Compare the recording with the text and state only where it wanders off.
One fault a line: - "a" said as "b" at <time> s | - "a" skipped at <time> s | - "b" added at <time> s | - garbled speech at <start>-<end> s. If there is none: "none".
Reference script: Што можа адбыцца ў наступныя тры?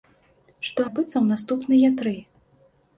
- "можа" skipped at 0.8 s